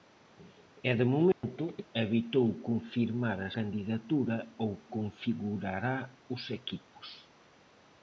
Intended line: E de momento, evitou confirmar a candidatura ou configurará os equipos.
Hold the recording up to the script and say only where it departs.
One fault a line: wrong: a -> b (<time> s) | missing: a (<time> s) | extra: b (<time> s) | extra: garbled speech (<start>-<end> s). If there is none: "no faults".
no faults